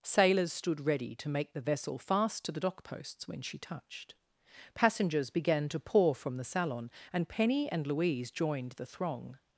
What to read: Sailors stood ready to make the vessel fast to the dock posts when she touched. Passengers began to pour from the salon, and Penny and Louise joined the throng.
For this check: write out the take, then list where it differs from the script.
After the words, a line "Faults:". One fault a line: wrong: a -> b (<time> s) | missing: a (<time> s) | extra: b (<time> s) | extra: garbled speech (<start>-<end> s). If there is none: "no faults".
Sailors stood ready to make the vessel fast to the dock posts when she touched. Passengers began to pour from the salon, and Penny and Louise joined the throng.
Faults:
no faults